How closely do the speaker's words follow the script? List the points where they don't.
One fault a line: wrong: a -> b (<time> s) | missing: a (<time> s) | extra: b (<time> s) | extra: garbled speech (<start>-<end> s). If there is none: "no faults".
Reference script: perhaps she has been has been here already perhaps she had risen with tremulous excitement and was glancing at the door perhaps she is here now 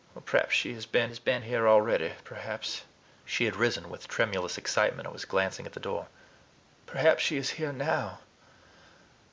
no faults